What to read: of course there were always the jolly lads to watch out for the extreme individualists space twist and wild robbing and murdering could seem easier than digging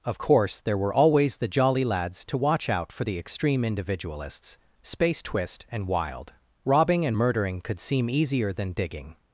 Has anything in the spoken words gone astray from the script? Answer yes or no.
no